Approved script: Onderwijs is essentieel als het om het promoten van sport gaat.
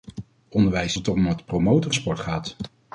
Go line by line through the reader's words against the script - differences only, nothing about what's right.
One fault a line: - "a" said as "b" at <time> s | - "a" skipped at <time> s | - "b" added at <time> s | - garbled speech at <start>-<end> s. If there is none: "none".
- "is essentieel als" skipped at 1.0 s
- "van" skipped at 1.9 s